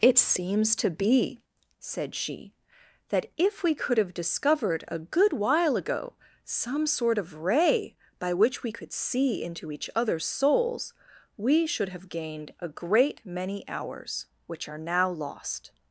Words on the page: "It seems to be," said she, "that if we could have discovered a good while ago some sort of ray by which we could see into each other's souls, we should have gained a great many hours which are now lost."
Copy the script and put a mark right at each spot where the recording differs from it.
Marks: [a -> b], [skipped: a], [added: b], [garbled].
"It seems to be," said she, "that if we could have discovered a good while ago some sort of ray by which we could see into each other's souls, we should have gained a great many hours which are now lost."